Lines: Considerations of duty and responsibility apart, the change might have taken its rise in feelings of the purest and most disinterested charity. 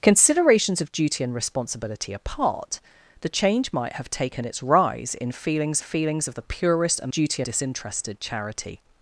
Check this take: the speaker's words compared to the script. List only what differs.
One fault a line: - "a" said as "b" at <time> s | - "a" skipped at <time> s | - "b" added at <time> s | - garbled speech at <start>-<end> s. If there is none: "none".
- "feelings" added at 5.8 s
- "most" said as "duty" at 7.1 s